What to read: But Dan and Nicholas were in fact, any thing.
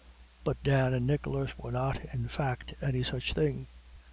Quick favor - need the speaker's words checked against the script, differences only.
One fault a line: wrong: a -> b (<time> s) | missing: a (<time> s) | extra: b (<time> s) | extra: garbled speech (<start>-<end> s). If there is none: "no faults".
extra: not (1.7 s)
extra: such (3.0 s)